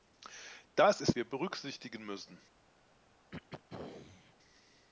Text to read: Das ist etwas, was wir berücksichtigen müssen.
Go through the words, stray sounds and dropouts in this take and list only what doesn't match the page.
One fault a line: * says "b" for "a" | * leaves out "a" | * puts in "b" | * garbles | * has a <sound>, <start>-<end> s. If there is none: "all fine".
* leaves out "etwas was"
* has a throat clearing, 3.3-4.3 s